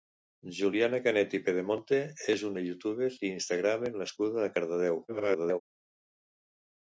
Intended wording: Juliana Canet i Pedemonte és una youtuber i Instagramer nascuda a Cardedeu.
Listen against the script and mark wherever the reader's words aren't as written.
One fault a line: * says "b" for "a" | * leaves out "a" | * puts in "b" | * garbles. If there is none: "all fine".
* garbles